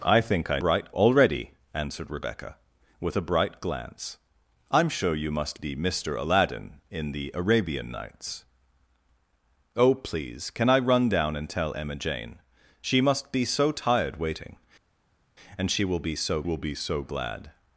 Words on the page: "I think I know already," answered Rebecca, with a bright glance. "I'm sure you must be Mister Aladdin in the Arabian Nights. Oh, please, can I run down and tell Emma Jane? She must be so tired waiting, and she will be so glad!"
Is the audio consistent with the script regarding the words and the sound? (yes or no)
no